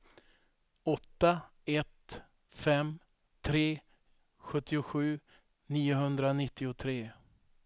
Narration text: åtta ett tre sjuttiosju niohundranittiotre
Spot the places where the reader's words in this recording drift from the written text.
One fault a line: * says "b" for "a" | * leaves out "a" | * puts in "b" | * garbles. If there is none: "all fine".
* puts in "fem"